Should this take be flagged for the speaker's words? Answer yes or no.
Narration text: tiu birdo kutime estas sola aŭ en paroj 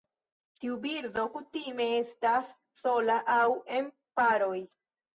no